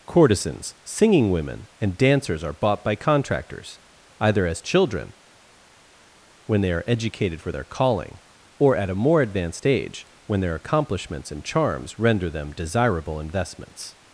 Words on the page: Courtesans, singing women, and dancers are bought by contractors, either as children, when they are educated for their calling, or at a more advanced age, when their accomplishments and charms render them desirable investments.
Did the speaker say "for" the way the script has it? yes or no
yes